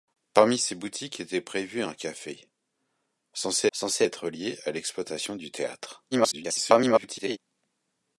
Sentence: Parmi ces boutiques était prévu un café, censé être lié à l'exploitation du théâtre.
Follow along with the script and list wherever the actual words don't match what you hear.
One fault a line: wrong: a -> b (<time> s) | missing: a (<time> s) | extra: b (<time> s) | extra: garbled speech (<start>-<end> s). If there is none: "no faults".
extra: censé (3.7 s)
extra: garbled speech (6.1-7.4 s)